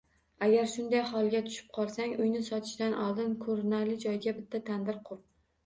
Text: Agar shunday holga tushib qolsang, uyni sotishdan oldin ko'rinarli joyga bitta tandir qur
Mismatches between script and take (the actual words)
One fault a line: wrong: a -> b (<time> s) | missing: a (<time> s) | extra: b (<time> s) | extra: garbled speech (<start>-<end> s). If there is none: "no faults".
no faults